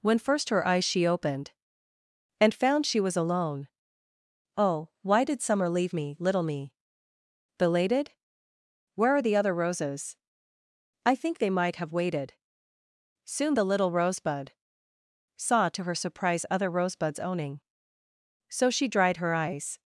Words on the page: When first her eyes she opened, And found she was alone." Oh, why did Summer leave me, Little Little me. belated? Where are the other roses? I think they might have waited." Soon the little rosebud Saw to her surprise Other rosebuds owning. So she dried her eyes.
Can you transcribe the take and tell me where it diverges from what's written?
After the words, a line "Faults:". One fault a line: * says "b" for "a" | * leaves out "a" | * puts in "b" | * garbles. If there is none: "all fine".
When first her eyes she opened, And found she was alone." Oh, why did Summer leave me, Little me. belated? Where are the other roses? I think they might have waited." Soon the little rosebud Saw to her surprise Other rosebuds owning. So she dried her eyes.
Faults:
* leaves out "Little"